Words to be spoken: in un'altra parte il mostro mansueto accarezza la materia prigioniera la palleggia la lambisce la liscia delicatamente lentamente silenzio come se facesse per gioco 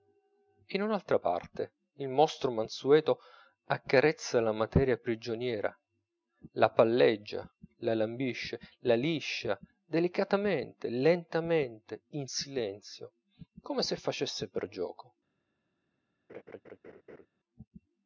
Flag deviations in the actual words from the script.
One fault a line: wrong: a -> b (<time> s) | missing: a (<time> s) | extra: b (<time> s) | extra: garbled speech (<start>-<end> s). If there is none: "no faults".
extra: in (12.1 s)